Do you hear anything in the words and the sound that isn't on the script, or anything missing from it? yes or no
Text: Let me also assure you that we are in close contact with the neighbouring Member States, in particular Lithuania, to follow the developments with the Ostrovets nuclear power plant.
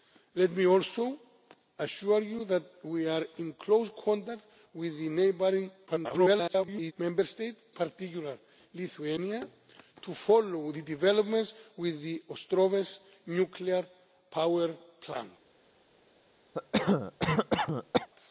yes